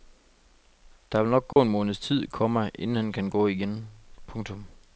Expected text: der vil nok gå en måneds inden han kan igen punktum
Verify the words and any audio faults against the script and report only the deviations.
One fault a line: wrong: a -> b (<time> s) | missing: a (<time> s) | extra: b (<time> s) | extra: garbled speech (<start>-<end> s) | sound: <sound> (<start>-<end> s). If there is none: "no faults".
sound: dropout (1.5-1.6 s)
extra: tid komma (2.0 s)
extra: gå (3.3 s)